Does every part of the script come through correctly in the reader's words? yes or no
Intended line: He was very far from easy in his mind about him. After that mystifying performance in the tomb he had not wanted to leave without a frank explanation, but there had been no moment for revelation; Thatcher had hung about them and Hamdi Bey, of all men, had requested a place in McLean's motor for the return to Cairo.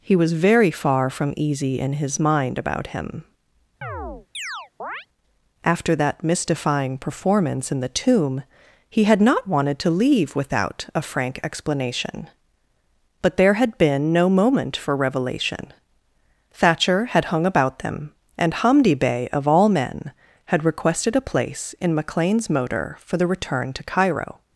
yes